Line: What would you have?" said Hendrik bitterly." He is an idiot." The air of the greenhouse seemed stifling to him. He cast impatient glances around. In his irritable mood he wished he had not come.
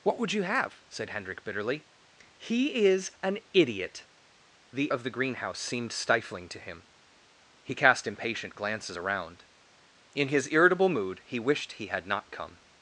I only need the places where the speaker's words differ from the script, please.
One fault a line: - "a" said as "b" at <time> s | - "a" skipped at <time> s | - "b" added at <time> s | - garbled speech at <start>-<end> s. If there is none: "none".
- "air" skipped at 4.9 s